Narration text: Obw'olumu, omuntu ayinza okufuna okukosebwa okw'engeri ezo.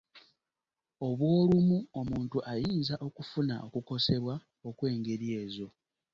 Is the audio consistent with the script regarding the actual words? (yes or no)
yes